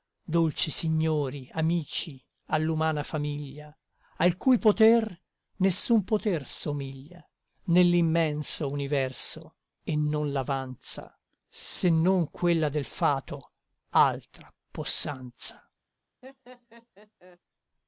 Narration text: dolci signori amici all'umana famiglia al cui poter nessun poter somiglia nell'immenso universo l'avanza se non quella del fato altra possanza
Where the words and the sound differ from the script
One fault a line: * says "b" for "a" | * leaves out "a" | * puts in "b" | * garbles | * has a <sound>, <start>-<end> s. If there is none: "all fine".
* puts in "e non"
* has a laugh, 16.2-17.4 s